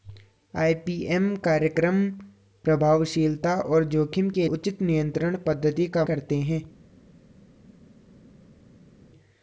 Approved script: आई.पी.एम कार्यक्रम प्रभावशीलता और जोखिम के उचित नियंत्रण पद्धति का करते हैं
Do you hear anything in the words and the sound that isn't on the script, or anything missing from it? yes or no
no